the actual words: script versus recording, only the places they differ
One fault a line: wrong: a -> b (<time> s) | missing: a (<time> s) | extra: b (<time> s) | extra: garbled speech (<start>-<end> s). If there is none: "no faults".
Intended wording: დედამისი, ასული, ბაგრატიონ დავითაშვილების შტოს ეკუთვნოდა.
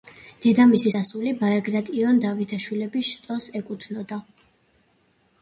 no faults